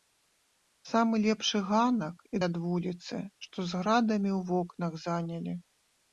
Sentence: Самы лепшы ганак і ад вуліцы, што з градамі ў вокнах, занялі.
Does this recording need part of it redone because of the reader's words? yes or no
no